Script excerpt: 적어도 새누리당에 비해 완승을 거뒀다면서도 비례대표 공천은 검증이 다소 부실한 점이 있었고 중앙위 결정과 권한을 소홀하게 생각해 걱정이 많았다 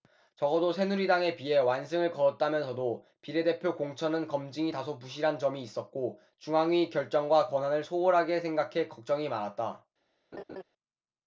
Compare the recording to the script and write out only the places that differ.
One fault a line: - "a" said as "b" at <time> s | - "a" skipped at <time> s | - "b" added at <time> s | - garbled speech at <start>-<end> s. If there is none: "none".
none